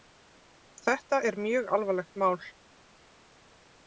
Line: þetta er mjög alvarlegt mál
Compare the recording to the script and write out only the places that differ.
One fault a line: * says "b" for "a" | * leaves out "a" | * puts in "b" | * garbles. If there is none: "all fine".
all fine